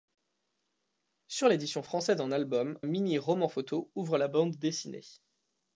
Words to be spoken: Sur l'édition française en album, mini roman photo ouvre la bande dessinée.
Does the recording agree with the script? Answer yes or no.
yes